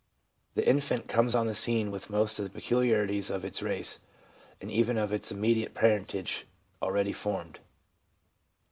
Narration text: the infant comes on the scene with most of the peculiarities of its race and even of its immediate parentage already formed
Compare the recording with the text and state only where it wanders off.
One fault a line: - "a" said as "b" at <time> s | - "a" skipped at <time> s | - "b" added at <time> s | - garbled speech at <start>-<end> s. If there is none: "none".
none